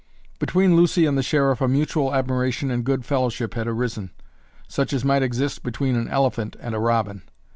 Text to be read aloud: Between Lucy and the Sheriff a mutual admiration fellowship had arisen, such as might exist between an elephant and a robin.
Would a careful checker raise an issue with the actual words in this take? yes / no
yes